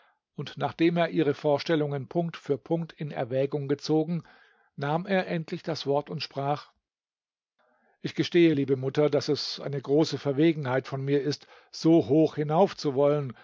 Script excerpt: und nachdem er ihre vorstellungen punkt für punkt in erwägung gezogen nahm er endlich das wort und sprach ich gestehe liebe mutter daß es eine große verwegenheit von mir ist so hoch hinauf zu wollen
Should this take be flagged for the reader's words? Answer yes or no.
no